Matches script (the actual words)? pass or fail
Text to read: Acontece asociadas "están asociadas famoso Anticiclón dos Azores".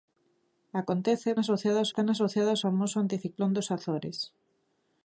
pass